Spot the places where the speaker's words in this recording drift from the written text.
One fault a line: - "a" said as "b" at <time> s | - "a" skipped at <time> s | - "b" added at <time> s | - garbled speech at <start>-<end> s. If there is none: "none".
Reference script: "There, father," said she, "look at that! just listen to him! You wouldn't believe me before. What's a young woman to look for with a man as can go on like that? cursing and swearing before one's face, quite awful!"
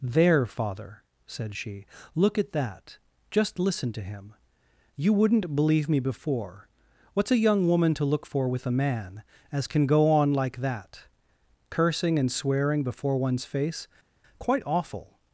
none